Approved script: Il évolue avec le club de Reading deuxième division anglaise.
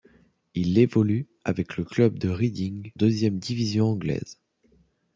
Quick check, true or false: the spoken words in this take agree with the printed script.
true